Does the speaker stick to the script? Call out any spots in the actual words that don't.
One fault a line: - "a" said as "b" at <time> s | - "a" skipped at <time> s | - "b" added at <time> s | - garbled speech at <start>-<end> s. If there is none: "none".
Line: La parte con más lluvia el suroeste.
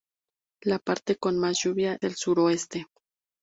none